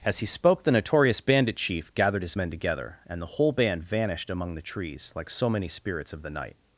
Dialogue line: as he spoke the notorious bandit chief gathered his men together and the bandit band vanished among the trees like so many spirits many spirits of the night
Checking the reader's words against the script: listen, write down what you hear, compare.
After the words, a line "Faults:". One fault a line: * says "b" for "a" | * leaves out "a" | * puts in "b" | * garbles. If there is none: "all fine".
as he spoke the notorious bandit chief gathered his men together and the whole band vanished among the trees like so many spirits of the night
Faults:
* says "whole" for "bandit"
* leaves out "many spirits"